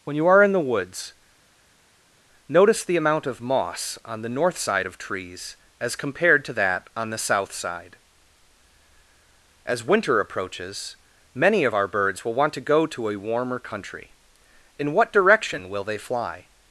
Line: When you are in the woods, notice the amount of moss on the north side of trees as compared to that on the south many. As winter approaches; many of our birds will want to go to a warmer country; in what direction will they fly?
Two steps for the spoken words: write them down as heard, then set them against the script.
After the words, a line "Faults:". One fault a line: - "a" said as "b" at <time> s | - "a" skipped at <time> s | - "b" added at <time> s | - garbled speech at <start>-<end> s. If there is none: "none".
When you are in the woods, notice the amount of moss on the north side of trees as compared to that on the south side. As winter approaches; many of our birds will want to go to a warmer country; in what direction will they fly?
Faults:
- "many" said as "side" at 7.5 s